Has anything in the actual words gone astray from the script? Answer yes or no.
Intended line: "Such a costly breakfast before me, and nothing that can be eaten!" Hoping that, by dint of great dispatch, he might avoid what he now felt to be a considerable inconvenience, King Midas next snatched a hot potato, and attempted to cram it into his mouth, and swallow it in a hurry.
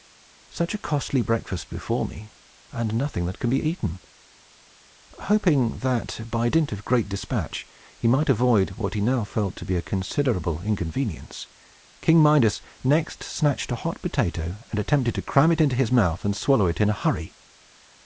no